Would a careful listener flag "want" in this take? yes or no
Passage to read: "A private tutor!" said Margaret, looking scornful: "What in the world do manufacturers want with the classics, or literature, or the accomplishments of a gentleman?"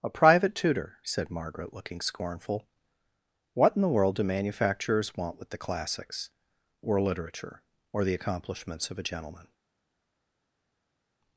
no